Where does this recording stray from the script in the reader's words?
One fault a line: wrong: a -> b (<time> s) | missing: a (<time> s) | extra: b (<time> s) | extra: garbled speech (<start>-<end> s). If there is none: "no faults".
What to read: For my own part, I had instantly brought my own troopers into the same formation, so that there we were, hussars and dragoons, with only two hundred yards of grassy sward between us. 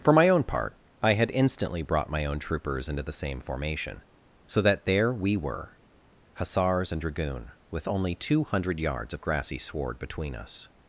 wrong: dragoons -> dragoon (7.0 s)